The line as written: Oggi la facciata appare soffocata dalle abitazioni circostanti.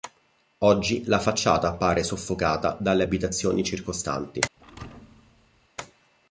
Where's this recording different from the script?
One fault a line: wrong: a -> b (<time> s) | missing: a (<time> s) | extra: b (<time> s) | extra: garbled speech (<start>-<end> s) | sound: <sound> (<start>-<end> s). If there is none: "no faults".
sound: thud (4.6-5.7 s)